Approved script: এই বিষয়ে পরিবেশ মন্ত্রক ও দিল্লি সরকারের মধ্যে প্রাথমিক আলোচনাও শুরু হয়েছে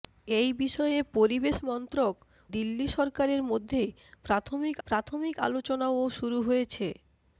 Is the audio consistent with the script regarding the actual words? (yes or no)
no